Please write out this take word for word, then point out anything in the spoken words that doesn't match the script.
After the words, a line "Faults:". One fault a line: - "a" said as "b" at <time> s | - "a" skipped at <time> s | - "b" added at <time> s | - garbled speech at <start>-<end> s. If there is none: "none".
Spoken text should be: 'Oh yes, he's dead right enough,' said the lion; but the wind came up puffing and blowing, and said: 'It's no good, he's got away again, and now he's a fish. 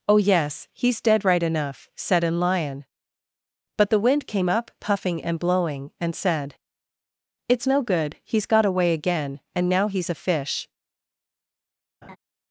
'Oh yes, he's dead right enough,' said an lion; but the wind came up puffing and blowing, and said: 'It's no good, he's got away again, and now he's a fish.
Faults:
- "the" said as "an" at 2.2 s